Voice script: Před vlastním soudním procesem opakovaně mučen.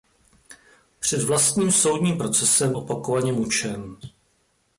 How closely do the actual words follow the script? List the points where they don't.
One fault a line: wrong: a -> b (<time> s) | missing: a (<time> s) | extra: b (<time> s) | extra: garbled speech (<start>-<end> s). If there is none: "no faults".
no faults